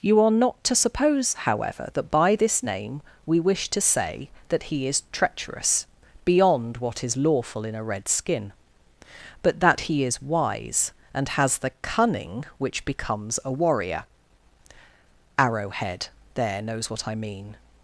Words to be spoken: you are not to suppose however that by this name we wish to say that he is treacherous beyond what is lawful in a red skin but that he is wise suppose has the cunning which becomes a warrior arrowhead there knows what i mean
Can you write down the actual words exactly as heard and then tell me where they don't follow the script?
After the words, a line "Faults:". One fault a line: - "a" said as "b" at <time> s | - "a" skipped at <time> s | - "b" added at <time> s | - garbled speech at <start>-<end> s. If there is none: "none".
you are not to suppose however that by this name we wish to say that he is treacherous beyond what is lawful in a red skin but that he is wise and has the cunning which becomes a warrior arrowhead there knows what i mean
Faults:
- "suppose" said as "and" at 11.1 s